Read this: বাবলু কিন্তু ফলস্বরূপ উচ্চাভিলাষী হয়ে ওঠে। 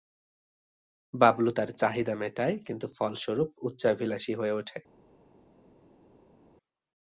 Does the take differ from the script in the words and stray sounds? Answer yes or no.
yes